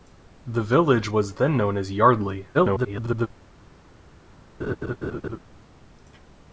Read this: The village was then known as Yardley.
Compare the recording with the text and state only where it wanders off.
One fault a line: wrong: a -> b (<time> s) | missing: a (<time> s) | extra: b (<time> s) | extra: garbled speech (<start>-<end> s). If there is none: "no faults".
extra: garbled speech (2.5-3.3 s)